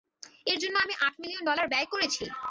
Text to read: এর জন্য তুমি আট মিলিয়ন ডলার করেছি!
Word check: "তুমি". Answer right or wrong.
wrong